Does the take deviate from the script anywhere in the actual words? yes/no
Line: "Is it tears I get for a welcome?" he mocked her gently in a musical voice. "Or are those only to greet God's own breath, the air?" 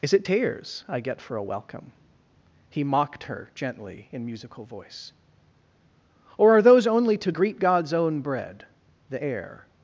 yes